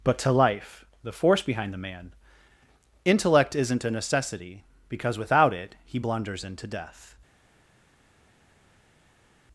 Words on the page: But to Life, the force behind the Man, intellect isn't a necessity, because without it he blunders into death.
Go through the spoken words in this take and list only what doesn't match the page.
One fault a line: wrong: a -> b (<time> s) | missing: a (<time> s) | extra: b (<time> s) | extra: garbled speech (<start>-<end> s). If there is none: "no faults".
no faults